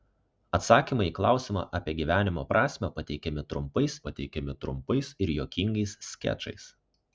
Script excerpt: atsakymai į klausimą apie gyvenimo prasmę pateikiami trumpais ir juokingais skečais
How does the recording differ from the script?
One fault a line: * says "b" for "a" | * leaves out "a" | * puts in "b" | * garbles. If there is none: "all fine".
* puts in "pateikiami trumpais"